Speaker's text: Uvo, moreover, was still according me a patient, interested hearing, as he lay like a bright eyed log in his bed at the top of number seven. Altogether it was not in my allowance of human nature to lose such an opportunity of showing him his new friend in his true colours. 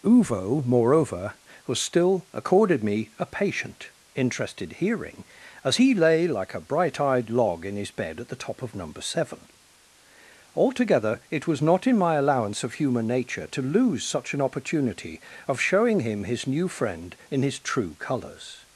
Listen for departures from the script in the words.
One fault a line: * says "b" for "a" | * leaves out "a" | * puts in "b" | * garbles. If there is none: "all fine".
* says "accorded" for "according"